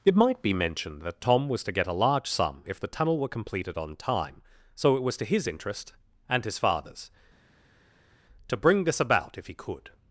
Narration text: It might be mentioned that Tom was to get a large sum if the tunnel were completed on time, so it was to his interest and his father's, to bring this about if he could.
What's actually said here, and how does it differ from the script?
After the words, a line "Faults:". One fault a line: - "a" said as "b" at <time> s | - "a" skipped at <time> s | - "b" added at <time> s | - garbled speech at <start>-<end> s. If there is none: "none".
It might be mentioned that Tom was to get a large sum if the tunnel were completed on time, so it was to his interest and his father's, to bring this about if he could.
Faults:
none